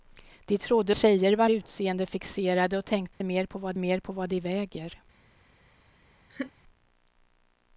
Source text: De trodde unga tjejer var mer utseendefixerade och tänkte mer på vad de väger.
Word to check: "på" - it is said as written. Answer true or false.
true